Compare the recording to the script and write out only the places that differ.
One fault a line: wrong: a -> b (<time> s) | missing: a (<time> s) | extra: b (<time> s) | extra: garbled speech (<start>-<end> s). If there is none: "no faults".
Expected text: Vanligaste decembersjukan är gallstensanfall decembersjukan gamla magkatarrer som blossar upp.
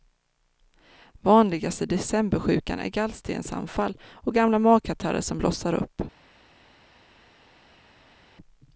wrong: decembersjukan -> och (4.0 s)